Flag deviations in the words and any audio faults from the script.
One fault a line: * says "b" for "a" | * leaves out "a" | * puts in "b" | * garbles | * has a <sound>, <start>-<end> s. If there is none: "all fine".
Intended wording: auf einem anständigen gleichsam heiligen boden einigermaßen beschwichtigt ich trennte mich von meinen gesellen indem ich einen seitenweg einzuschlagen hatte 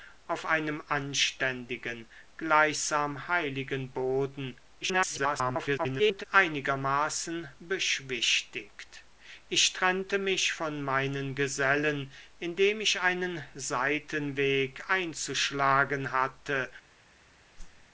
* garbles
* has a whoosh, 17.5-17.9 s